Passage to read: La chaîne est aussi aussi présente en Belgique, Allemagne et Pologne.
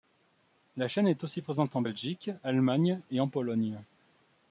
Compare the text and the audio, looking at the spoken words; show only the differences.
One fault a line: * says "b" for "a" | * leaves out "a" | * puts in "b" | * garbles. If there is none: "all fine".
* leaves out "aussi"
* puts in "en"